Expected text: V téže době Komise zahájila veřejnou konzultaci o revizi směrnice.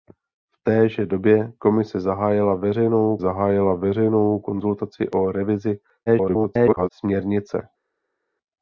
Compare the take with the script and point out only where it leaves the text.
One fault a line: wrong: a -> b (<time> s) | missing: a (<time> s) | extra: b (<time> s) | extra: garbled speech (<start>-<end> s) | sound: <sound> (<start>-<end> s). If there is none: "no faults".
extra: zahájila veřejnou (3.2 s)
extra: garbled speech (6.1-6.9 s)